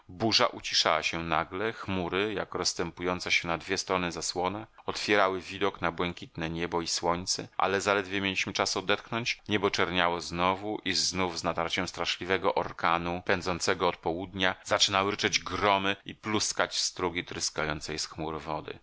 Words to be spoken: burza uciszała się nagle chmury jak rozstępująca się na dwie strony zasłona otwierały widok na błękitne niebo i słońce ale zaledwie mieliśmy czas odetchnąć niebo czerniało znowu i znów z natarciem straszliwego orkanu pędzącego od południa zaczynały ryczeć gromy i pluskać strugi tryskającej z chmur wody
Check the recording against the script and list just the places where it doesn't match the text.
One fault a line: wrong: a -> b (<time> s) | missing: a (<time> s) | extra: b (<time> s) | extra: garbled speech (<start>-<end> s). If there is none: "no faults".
no faults